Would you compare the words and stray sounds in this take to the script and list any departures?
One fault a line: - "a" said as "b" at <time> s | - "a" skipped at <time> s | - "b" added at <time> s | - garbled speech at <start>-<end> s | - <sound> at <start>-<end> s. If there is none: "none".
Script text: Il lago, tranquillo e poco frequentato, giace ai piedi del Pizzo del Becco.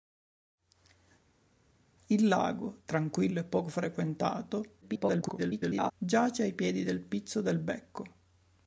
- garbled speech at 4.8-5.9 s